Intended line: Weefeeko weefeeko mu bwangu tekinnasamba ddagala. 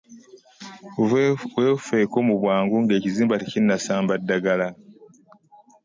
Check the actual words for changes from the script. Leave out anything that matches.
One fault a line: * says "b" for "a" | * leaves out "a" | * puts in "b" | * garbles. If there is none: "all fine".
* leaves out "weefeeko"
* puts in "ng'ekizimba"